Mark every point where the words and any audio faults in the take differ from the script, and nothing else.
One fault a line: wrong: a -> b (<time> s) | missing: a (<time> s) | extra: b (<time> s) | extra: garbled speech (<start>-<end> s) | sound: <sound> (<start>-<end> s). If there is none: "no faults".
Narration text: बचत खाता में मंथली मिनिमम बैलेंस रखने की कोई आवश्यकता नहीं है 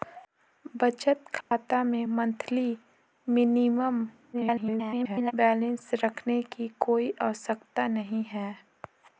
sound: dropout (1.4-1.5 s)
extra: garbled speech (4.3-5.3 s)